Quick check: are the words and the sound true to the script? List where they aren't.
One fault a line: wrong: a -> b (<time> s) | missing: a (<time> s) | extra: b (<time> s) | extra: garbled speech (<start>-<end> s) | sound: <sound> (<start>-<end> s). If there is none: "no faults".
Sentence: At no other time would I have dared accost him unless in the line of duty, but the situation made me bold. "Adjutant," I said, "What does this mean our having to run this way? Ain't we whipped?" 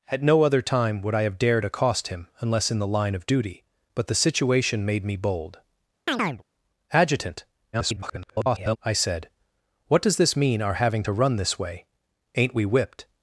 sound: chirp (6.1-6.4 s)
extra: garbled speech (7.7-8.8 s)